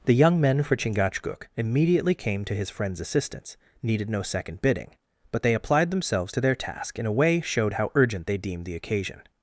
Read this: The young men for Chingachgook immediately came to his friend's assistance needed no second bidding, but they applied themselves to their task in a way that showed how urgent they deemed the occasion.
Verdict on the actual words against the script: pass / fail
fail